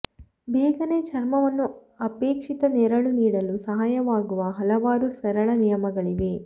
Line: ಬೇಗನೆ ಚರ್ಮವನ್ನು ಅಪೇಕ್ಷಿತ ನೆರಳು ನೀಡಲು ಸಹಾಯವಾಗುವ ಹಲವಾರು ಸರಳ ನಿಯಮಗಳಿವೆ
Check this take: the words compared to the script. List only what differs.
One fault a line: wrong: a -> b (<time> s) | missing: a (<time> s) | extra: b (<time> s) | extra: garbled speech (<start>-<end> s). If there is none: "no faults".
no faults